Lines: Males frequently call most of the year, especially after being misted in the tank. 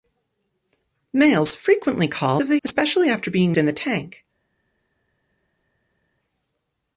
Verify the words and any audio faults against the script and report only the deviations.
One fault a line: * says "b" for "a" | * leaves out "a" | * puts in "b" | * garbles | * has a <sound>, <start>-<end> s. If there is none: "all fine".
* leaves out "most"
* leaves out "year"
* leaves out "misted"